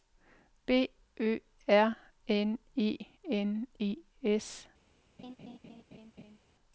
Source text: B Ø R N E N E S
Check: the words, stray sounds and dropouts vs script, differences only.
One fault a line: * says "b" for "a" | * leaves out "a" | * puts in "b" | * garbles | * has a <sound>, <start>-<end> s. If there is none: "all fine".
* has a laugh, 5.2-6.4 s